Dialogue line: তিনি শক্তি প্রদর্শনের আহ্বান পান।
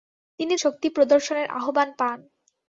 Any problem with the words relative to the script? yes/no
no